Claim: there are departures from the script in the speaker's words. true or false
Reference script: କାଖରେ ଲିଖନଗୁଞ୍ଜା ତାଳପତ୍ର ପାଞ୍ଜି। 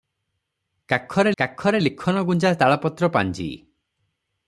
true